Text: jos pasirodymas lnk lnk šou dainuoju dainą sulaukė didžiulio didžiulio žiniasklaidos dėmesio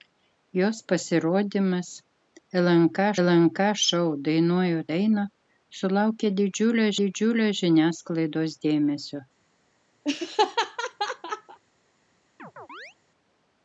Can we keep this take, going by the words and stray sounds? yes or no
no